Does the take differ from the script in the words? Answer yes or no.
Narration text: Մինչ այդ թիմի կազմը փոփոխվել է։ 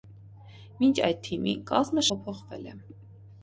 no